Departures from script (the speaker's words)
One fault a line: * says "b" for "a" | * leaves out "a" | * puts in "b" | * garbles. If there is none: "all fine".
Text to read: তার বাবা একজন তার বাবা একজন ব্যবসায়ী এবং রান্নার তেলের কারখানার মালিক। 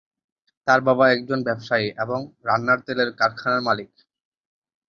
* leaves out "তার বাবা একজন"